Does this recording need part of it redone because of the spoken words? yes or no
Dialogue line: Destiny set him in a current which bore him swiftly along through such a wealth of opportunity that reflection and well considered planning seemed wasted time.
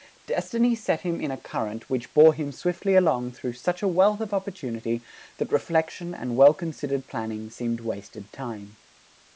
no